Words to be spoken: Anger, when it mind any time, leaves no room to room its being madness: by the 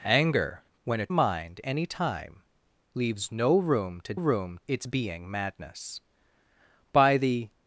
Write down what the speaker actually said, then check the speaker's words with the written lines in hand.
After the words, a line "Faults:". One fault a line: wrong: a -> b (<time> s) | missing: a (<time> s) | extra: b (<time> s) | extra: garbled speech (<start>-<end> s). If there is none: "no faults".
Anger, when it mind any time, leaves no room to room its being madness: by the
Faults:
no faults